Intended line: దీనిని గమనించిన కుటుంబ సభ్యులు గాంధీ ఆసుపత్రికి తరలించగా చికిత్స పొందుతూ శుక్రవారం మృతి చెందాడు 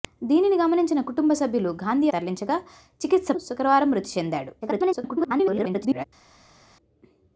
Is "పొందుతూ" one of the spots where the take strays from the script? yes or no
yes